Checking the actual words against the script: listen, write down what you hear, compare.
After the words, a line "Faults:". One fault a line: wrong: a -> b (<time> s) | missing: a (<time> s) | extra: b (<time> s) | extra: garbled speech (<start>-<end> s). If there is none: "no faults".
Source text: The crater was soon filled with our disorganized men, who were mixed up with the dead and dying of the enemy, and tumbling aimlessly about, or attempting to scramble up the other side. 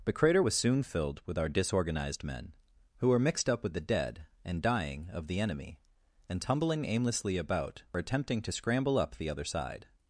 The crater was soon filled with our disorganized men, who were mixed up with the dead and dying of the enemy, and tumbling aimlessly about, or attempting to scramble up the other side.
Faults:
no faults